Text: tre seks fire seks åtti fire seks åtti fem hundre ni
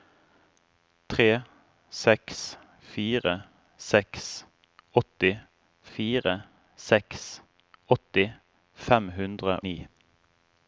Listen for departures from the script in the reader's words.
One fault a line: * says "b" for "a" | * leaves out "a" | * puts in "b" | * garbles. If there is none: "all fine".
all fine